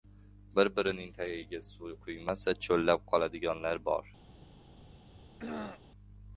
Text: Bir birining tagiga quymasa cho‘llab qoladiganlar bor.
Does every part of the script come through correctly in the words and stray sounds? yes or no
no